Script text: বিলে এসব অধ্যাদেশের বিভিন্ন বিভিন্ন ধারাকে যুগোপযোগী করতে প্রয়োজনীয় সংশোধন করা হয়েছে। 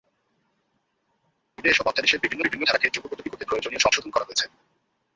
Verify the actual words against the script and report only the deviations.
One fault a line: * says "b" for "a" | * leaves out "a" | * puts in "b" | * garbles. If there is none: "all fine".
all fine